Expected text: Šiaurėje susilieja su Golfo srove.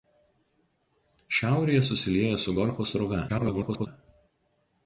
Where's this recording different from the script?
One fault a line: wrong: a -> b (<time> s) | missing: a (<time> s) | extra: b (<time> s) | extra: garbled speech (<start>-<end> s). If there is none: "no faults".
extra: garbled speech (3.3-3.9 s)